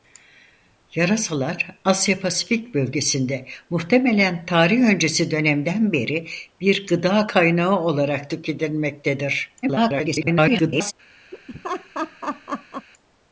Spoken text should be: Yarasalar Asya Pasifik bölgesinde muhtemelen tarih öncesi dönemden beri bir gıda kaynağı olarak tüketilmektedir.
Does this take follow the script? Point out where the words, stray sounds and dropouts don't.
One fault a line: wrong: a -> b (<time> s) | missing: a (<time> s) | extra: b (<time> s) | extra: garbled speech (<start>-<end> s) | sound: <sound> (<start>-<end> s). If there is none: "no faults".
extra: garbled speech (9.6-10.9 s)
sound: laugh (11.3-12.9 s)